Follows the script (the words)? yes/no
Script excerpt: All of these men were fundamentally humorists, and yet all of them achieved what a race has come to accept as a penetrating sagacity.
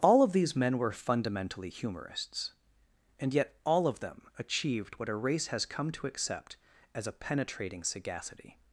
yes